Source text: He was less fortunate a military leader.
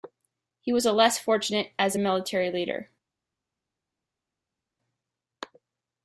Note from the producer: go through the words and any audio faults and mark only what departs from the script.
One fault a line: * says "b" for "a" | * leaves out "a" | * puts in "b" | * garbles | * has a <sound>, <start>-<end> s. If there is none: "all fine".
* puts in "as"